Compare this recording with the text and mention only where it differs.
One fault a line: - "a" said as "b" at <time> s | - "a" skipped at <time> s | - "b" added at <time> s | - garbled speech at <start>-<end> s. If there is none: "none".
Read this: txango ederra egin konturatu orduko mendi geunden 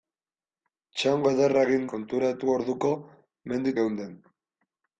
none